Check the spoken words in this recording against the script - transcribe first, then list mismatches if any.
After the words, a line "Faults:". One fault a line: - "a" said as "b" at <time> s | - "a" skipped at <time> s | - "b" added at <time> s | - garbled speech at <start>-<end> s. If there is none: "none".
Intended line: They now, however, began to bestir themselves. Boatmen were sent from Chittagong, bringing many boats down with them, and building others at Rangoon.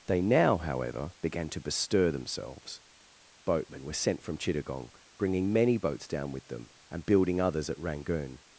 They now, however, began to bestir themselves. Boatmen were sent from Chittagong, bringing many boats down with them, and building others at Rangoon.
Faults:
none